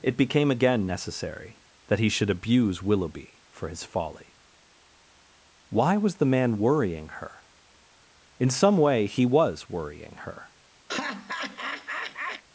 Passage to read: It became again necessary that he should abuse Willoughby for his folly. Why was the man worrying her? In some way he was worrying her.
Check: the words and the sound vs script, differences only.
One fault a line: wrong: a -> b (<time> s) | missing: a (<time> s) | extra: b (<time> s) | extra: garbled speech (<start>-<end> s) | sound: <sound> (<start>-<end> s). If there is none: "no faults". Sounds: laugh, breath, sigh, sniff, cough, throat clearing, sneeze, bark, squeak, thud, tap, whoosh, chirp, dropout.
sound: laugh (10.9-12.4 s)